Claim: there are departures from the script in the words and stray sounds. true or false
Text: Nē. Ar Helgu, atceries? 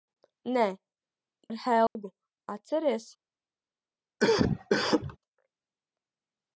true